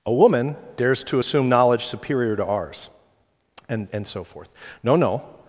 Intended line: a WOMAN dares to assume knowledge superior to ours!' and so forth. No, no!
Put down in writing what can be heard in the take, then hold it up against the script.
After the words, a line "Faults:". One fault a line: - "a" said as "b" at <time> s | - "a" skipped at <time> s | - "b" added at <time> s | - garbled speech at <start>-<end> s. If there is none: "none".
a WOMAN dares to assume knowledge superior to ours!' and and so forth. No, no!
Faults:
- "and" added at 3.9 s